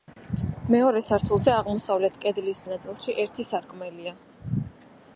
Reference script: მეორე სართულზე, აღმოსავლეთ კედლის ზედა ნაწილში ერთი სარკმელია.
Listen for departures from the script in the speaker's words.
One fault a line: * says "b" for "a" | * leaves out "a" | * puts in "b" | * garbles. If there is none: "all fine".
* leaves out "ზედა"